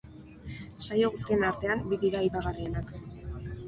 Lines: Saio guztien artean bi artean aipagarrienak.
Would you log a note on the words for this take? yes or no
yes